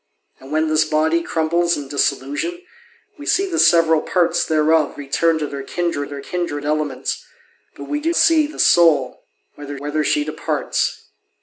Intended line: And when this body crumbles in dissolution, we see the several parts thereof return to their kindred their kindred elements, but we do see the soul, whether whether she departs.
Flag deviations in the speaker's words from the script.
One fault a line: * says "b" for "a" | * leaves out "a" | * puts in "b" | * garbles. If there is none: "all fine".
all fine